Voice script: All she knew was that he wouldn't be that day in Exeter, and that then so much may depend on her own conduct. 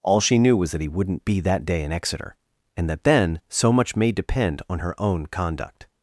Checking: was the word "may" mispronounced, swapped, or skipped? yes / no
no